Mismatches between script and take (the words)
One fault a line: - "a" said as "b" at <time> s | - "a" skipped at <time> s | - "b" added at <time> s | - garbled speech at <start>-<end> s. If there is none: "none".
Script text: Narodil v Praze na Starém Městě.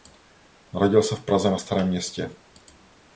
- "se" added at 1.0 s